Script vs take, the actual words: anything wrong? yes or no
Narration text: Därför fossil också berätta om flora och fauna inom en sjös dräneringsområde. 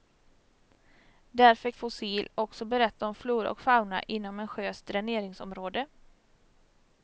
no